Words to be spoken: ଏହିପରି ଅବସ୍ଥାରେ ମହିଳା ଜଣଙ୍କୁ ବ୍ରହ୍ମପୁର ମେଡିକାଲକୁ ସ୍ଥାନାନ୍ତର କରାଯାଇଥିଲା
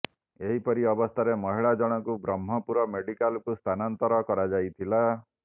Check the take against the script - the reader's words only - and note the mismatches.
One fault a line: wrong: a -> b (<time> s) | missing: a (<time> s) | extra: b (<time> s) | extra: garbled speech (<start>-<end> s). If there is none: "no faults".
no faults